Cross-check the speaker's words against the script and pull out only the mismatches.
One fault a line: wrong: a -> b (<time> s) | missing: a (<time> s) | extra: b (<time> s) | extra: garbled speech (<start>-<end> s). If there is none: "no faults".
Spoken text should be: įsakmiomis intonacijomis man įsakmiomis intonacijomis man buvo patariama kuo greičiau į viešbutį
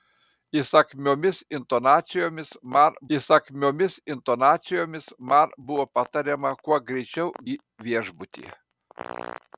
no faults